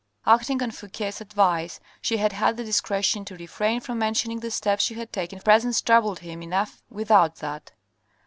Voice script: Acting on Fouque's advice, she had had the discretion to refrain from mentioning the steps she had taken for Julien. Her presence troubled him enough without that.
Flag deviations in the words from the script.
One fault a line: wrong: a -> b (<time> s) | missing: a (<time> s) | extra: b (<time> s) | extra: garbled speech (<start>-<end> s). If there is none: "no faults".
missing: for Julien Her (5.4 s)